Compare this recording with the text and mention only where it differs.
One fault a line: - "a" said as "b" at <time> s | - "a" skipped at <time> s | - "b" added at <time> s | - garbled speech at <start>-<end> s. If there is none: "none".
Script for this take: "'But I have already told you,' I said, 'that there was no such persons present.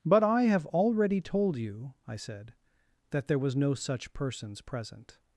none